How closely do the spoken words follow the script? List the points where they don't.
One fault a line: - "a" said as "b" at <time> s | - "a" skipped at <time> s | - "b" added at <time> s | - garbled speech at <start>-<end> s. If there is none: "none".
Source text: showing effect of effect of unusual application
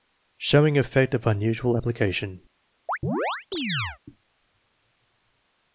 - "effect of" skipped at 1.3 s